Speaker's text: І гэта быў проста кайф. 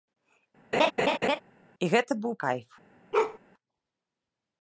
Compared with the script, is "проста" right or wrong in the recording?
wrong